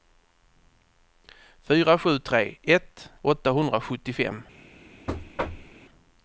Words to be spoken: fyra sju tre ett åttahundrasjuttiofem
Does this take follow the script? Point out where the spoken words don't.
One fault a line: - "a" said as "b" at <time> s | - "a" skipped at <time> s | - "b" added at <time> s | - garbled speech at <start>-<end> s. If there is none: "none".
none